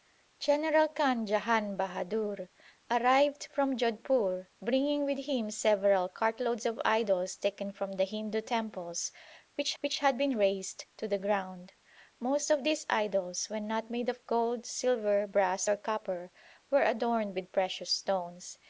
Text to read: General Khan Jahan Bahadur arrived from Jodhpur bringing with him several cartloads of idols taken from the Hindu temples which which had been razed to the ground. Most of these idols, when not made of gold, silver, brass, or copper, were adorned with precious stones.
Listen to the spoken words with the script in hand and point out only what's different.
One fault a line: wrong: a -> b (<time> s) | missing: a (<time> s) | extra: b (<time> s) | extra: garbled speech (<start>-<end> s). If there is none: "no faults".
no faults